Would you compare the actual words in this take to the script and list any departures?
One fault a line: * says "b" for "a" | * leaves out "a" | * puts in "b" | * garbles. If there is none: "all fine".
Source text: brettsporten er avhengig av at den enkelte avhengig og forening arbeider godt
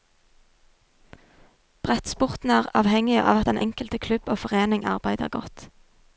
* says "klubb" for "avhengig"